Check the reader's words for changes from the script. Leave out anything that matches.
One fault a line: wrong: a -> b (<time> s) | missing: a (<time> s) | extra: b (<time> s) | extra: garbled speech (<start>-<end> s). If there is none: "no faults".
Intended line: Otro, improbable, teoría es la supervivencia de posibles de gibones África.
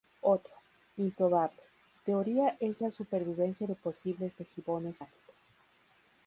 no faults